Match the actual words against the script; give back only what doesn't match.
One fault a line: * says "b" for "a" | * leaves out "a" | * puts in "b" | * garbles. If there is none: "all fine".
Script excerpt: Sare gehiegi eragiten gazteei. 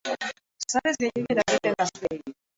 all fine